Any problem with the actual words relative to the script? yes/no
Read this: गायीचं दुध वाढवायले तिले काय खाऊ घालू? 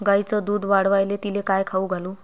no